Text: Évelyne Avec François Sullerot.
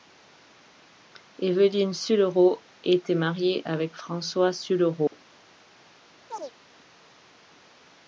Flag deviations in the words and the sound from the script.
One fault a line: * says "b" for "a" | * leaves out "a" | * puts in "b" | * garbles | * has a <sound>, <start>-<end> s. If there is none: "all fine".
* puts in "Sullerot était mariée"
* has a dropout, 5.1-5.1 s
* has a chirp, 6.3-6.5 s